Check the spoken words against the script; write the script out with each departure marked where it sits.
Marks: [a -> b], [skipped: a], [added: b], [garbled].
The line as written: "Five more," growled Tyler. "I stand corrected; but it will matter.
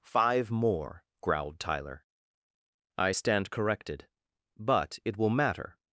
"Five more," growled Tyler. "I stand corrected; but it will matter.